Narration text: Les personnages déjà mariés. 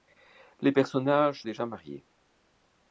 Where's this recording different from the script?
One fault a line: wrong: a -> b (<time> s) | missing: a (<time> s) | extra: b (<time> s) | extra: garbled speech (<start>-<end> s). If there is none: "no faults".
no faults